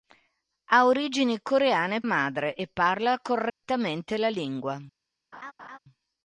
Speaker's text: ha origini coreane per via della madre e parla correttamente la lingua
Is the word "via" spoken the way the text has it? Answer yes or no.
no